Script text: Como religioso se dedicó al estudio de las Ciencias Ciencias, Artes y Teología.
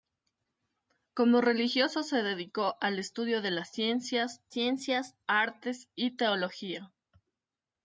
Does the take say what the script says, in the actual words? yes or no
yes